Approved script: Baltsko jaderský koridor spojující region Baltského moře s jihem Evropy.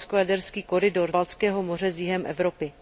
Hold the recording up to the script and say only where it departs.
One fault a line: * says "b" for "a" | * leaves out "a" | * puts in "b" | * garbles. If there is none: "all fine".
* leaves out "spojující region"